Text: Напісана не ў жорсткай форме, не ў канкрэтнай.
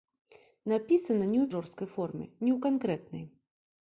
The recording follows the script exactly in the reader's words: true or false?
true